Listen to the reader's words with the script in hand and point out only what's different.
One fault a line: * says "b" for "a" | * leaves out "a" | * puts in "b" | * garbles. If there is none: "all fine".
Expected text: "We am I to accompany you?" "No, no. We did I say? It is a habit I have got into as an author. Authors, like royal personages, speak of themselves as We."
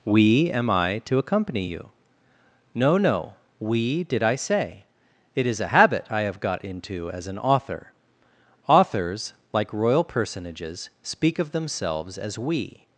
all fine